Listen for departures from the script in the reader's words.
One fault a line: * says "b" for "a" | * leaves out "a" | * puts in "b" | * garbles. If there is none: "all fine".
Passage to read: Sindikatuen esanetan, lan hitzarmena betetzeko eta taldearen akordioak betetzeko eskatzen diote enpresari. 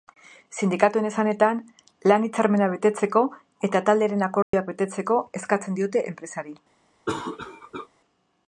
all fine